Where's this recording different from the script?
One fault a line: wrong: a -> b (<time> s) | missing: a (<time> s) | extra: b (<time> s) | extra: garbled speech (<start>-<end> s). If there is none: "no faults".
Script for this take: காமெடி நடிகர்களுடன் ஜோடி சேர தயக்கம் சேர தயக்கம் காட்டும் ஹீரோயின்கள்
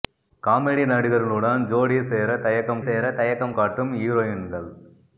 no faults